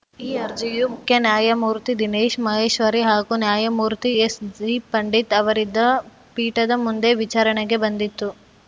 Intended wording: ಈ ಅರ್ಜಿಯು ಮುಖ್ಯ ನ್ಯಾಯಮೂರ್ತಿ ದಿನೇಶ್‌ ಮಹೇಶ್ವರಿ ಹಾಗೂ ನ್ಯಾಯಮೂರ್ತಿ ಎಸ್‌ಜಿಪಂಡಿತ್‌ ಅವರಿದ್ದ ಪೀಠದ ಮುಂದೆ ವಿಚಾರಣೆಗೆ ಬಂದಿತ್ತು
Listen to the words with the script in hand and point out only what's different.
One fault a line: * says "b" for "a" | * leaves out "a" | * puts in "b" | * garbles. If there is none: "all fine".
all fine